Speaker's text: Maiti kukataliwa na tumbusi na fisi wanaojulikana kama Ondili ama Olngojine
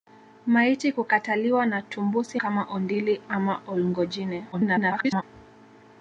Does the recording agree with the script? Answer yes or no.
no